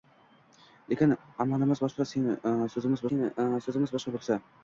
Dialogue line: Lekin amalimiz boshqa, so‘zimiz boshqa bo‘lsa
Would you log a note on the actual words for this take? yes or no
yes